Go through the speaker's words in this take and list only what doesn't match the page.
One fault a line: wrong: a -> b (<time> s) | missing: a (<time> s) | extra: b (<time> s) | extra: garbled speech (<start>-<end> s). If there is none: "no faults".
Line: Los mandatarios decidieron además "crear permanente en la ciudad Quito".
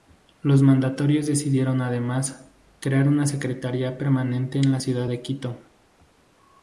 extra: una secretaría (3.1 s)
extra: de (5.1 s)